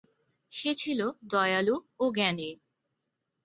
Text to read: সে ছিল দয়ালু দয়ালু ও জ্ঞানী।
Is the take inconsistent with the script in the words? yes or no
yes